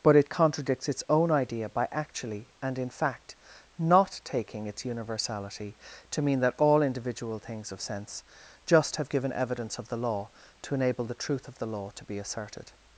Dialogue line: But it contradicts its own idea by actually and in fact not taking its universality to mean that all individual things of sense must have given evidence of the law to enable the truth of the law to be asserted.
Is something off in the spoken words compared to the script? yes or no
yes